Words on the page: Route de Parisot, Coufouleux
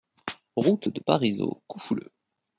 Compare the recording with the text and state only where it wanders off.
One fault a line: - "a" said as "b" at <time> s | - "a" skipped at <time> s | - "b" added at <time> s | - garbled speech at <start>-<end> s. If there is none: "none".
none